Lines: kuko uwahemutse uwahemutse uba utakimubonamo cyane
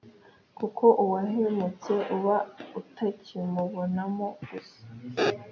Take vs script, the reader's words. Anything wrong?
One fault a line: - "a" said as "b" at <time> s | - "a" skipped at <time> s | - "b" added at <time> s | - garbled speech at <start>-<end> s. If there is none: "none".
- "uwahemutse" skipped at 1.9 s
- "cyane" said as "gusa" at 4.5 s